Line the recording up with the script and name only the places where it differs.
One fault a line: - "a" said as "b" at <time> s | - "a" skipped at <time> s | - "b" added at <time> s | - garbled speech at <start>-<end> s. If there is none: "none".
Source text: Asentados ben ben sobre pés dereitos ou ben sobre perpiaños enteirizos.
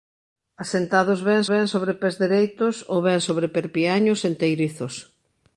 none